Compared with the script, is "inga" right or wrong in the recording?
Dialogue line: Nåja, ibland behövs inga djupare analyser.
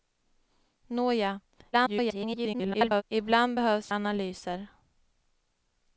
wrong